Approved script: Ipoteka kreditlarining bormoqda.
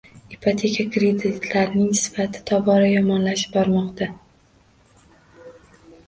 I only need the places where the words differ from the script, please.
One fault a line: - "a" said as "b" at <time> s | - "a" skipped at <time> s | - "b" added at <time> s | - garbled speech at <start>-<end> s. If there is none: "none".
- "sifati tobora yomonlashib" added at 2.0 s